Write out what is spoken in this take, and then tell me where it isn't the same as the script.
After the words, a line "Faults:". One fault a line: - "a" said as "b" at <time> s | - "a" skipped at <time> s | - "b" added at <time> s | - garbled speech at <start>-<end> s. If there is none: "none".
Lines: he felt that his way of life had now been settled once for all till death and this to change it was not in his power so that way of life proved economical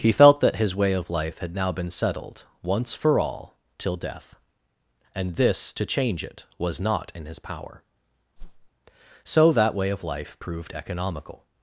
he felt that his way of life had now been settled once for all till death and this to change it was not in his power so that way of life proved economical
Faults:
none